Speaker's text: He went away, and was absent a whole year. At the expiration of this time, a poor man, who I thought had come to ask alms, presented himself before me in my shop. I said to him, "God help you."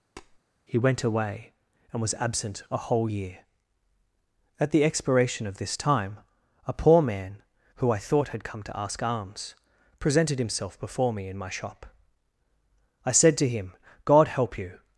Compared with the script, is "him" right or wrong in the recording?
right